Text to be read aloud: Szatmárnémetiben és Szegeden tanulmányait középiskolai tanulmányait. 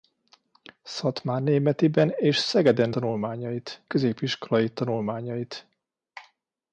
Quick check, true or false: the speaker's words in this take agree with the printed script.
true